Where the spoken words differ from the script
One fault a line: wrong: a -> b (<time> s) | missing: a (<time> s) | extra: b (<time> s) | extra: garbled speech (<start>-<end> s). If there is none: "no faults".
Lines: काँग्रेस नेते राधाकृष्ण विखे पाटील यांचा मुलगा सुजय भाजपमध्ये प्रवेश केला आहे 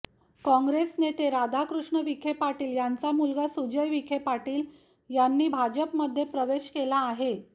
extra: विखे पाटील यांनी (3.9 s)